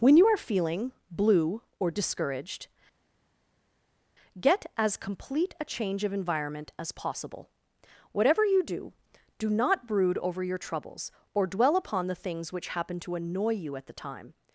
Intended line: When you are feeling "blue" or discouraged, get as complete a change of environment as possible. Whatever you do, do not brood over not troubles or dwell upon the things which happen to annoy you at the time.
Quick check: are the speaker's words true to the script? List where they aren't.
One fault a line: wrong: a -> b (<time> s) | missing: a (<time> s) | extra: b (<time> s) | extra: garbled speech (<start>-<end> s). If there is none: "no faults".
wrong: not -> your (10.4 s)